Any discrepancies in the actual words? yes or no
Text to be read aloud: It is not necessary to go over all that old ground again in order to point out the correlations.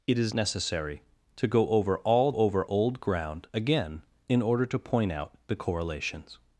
yes